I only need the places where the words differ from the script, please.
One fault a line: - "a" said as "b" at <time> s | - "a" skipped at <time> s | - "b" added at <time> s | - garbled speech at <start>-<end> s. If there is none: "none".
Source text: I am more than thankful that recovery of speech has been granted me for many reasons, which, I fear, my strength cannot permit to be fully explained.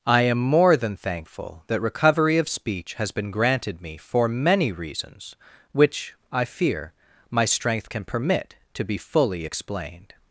- "cannot" said as "can" at 7.9 s